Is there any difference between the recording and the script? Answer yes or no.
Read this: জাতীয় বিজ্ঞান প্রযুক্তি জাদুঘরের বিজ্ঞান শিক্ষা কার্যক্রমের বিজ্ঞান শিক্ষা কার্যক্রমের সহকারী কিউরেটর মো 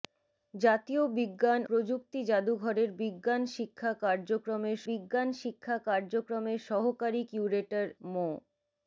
no